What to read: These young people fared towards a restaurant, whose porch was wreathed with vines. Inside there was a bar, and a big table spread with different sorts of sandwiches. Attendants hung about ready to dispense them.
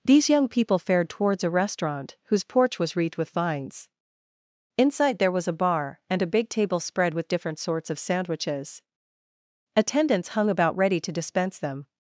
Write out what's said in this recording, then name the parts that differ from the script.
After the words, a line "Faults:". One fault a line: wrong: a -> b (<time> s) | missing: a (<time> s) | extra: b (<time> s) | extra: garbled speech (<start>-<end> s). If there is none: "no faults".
These young people fared towards a restaurant, whose porch was wreathed with vines. Inside there was a bar, and a big table spread with different sorts of sandwiches. Attendants hung about ready to dispense them.
Faults:
no faults